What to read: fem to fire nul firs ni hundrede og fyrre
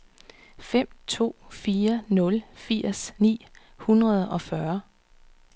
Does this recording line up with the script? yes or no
yes